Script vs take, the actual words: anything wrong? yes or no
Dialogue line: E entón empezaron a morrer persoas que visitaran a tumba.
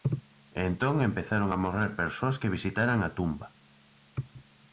no